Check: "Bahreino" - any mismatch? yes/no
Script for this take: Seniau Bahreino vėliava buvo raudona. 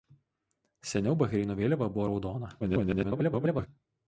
no